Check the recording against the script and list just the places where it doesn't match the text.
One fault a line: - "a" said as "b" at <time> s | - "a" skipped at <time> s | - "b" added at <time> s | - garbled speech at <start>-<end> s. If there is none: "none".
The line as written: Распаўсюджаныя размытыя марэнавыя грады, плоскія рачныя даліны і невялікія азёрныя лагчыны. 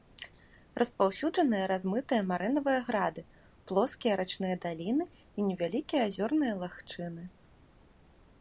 none